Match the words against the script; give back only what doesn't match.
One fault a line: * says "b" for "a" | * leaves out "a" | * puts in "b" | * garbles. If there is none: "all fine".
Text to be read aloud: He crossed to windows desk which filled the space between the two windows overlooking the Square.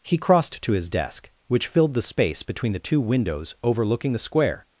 * says "his" for "windows"